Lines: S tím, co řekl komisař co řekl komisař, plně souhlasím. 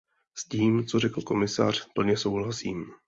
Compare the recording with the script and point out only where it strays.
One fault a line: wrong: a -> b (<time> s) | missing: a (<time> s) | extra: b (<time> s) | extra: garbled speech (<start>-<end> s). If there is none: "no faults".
missing: co řekl komisař (1.9 s)